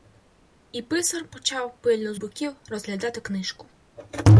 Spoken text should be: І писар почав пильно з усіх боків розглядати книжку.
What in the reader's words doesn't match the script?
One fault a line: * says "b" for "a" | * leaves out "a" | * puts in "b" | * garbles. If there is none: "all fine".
* leaves out "усіх"